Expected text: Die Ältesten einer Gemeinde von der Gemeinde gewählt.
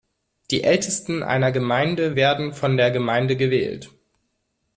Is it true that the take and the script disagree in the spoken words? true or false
true